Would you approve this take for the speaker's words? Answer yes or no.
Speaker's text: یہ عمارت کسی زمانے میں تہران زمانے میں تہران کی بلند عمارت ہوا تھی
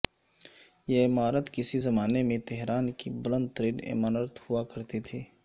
no